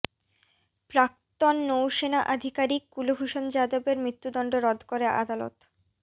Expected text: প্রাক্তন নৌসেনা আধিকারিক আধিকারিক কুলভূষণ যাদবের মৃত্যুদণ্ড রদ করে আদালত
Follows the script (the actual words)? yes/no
no